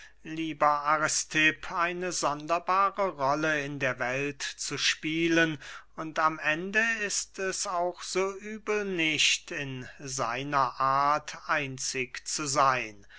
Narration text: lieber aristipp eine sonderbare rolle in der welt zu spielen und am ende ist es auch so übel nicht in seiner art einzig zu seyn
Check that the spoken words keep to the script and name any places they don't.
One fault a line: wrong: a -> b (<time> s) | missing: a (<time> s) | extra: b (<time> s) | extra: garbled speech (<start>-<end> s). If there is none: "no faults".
no faults